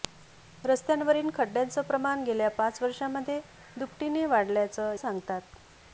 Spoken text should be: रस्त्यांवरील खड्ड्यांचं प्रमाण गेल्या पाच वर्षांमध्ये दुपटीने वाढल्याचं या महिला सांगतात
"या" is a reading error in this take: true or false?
true